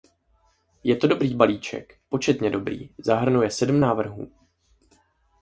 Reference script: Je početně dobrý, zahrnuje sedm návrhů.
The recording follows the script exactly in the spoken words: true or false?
false